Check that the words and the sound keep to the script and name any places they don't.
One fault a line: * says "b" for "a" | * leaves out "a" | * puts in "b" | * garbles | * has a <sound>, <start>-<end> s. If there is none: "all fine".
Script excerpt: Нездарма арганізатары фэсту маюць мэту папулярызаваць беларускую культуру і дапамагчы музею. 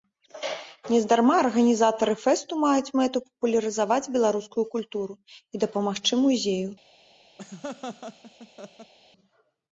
* has a laugh, 7.4-8.9 s